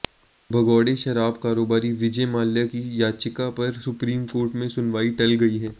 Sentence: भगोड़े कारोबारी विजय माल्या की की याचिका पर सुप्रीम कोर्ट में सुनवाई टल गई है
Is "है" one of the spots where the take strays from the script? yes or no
no